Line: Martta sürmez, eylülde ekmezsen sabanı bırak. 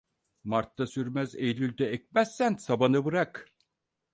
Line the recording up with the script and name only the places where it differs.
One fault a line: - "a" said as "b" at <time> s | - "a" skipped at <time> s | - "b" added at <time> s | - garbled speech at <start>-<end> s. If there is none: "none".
none